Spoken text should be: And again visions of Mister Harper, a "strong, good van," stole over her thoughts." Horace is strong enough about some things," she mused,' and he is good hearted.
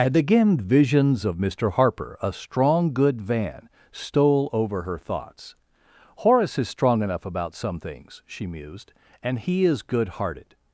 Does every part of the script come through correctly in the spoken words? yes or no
yes